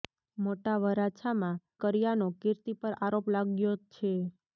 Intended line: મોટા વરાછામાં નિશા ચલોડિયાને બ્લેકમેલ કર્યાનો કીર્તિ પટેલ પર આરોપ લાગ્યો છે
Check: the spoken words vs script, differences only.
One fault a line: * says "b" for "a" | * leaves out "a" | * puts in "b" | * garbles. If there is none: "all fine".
* leaves out "નિશા ચલોડિયાને બ્લેકમેલ"
* leaves out "પટેલ"